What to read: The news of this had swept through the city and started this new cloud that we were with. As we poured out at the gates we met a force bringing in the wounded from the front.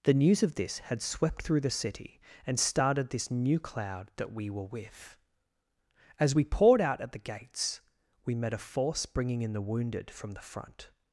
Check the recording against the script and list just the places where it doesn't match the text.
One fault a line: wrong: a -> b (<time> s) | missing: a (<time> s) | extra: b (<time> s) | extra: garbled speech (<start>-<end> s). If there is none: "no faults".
no faults